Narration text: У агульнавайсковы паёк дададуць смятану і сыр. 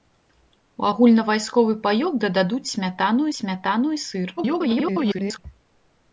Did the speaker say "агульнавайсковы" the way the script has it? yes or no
yes